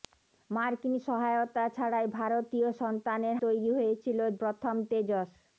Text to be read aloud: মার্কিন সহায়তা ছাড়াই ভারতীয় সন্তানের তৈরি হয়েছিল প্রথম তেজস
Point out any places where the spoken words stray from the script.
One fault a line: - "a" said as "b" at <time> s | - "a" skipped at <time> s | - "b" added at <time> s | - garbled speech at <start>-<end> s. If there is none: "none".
none